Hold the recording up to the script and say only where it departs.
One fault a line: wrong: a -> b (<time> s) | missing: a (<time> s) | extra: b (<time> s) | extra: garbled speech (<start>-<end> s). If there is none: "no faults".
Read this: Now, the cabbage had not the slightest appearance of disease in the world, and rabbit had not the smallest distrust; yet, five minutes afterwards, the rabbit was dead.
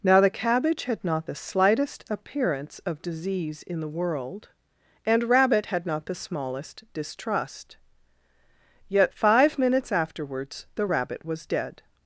no faults